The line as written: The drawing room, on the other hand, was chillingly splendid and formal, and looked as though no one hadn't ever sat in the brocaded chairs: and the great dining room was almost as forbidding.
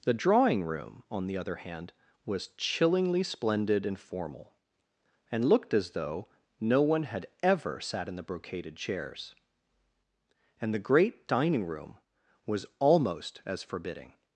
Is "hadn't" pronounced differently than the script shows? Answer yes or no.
yes